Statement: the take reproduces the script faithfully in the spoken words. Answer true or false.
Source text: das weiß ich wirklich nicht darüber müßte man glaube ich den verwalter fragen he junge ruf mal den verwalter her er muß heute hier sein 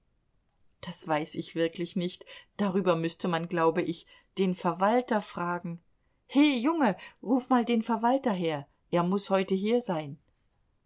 true